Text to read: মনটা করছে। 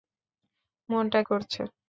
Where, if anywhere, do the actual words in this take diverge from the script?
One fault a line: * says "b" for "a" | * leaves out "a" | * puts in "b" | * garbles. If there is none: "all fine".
all fine